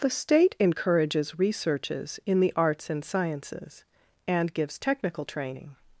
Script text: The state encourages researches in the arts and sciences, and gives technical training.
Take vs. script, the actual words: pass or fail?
pass